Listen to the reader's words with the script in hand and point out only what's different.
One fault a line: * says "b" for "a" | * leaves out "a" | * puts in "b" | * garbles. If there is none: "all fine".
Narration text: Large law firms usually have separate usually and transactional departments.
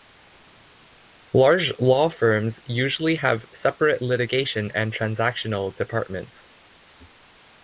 * says "litigation" for "usually"